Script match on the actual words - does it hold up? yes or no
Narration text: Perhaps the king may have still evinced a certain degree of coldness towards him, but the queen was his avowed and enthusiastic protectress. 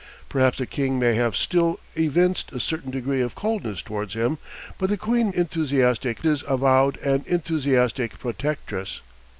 no